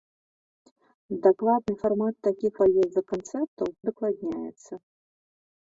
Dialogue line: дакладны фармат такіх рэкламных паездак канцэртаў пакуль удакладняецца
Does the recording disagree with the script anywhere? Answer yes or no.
yes